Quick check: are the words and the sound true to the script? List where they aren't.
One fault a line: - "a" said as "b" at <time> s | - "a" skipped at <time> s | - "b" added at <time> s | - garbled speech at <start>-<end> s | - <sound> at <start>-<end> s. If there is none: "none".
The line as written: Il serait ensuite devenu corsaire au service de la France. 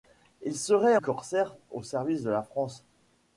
- "ensuite devenu" skipped at 1.0 s